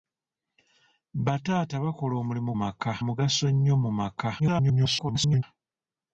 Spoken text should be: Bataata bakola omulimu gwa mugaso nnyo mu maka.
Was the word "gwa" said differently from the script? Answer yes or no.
yes